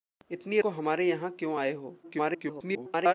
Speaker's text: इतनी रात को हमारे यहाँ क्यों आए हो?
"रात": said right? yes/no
no